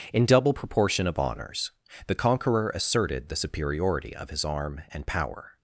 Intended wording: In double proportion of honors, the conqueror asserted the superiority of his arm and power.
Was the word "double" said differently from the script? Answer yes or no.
no